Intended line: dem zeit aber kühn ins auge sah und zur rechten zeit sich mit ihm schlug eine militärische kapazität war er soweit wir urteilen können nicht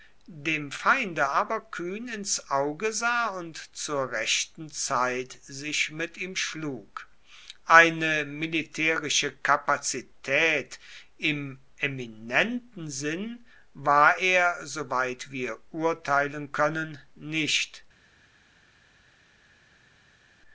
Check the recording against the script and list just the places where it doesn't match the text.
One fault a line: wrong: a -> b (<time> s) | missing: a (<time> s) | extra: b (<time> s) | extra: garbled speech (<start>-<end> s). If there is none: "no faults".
wrong: zeit -> feinde (0.7 s)
extra: im eminenten sinn (11.2 s)